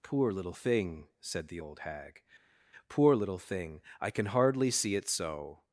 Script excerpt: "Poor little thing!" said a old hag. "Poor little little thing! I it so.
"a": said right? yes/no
no